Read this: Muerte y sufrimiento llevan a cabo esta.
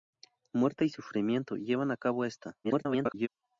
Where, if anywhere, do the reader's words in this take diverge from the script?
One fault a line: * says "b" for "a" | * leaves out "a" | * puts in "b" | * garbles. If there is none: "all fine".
* garbles